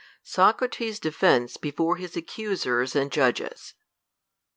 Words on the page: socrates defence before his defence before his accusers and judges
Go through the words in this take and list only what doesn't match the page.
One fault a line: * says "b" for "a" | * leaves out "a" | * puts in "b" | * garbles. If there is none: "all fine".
* leaves out "defence before his"